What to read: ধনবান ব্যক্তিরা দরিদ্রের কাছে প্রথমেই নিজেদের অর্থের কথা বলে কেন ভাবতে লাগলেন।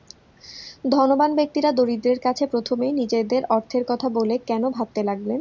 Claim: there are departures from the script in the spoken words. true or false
false